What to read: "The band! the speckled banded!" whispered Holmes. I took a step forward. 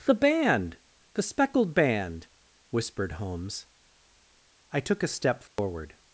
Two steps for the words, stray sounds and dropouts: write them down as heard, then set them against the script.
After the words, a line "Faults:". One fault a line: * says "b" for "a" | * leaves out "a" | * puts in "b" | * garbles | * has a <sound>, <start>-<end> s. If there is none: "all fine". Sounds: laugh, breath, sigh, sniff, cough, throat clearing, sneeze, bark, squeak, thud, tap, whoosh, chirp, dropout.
"The band! the speckled band!" whispered Holmes. I took a step forward.
Faults:
* says "band" for "banded"
* has a dropout, 5.5-5.6 s